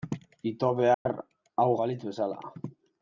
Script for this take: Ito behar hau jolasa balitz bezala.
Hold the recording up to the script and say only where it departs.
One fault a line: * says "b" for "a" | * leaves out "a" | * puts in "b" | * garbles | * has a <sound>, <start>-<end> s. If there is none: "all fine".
* has a dropout, 0.9-1.1 s
* leaves out "jolasa"